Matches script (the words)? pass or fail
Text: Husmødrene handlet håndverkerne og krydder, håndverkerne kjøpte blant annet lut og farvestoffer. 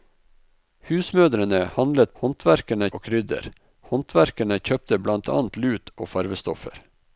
pass